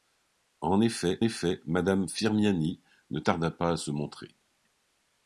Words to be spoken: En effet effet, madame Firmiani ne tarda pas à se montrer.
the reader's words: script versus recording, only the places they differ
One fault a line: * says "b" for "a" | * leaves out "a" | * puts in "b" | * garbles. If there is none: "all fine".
all fine